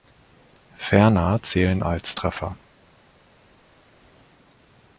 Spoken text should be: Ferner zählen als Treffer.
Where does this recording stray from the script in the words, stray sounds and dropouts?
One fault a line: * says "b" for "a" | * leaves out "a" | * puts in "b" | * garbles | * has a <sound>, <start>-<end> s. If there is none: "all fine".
all fine